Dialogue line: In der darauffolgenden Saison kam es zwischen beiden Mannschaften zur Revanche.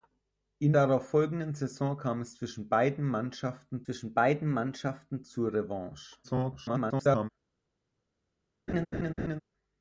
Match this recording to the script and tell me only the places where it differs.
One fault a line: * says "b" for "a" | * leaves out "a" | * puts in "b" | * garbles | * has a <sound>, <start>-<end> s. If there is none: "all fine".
* leaves out "der"
* puts in "zwischen beiden Mannschaften"
* garbles
* has a laugh, 8.7-9.4 s